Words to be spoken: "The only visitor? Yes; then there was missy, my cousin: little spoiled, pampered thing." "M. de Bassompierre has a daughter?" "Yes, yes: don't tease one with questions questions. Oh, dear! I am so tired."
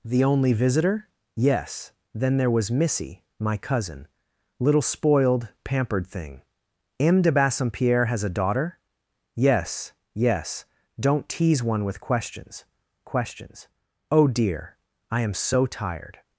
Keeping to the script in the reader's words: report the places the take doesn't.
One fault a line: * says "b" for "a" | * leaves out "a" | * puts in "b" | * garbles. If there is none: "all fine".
all fine